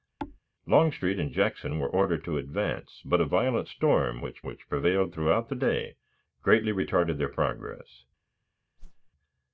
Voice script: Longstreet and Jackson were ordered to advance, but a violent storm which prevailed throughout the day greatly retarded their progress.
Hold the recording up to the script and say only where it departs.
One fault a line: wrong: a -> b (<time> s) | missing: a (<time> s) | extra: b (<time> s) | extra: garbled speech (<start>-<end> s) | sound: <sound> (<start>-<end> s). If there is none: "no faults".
sound: thud (0.2-0.4 s)
extra: which (4.4 s)
sound: whoosh (8.8-9.1 s)